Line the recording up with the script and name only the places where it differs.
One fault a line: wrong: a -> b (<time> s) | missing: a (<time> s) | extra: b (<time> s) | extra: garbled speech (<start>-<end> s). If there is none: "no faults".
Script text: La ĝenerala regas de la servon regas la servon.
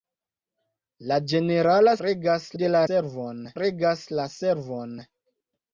no faults